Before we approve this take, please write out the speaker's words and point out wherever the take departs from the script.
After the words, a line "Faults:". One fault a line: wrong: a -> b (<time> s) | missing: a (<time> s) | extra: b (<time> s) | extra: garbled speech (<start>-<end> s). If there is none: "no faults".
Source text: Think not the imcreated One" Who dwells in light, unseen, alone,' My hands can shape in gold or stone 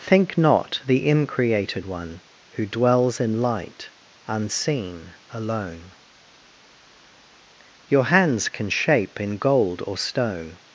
Think not the imcreated One" Who dwells in light, unseen, alone,' Your hands can shape in gold or stone
Faults:
wrong: My -> Your (7.9 s)